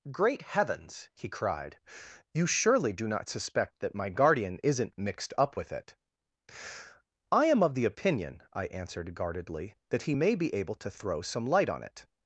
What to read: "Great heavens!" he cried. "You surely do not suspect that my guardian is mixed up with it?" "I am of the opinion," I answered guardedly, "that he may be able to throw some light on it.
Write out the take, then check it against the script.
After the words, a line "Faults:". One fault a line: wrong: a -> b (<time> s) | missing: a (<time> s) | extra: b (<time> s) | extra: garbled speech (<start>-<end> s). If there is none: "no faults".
"Great heavens!" he cried. "You surely do not suspect that my guardian isn't mixed up with it?" "I am of the opinion," I answered guardedly, "that he may be able to throw some light on it.
Faults:
wrong: is -> isn't (4.6 s)